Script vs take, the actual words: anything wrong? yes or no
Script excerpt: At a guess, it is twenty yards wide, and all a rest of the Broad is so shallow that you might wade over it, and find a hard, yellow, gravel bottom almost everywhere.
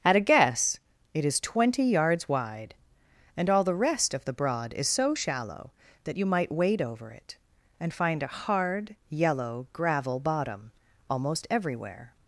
yes